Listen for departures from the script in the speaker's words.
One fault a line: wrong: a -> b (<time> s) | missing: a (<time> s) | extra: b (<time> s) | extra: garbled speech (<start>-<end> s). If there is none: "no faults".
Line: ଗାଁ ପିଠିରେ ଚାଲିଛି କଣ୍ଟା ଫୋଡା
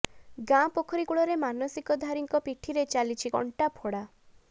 extra: ପୋଖରୀ କୂଳରେ ମାନସିକଧାରୀଙ୍କ (0.8 s)